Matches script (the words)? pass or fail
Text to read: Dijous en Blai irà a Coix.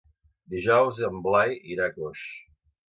pass